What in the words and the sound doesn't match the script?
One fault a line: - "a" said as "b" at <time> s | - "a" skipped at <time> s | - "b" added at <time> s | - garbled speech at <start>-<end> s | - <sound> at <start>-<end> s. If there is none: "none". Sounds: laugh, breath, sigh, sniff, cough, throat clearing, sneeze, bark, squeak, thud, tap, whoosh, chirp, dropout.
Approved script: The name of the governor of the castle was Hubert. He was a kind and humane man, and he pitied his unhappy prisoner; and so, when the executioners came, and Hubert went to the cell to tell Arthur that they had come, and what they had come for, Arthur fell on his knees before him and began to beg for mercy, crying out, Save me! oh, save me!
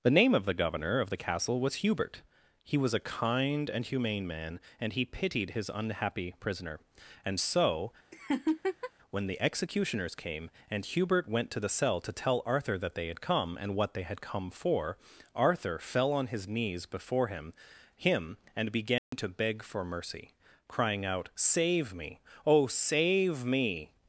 - laugh at 8.1-8.9 s
- "him" added at 18.0 s
- dropout at 19.0-19.1 s